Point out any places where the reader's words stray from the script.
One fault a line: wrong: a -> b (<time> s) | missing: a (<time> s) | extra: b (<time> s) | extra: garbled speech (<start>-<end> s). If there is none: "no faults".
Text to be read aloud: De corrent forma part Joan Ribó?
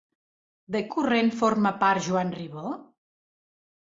no faults